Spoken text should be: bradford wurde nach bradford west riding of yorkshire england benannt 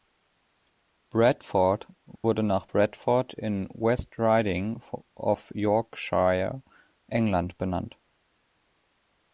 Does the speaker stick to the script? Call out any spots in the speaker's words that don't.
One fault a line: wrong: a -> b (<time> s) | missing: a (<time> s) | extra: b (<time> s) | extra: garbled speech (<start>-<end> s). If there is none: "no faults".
extra: in (3.3 s)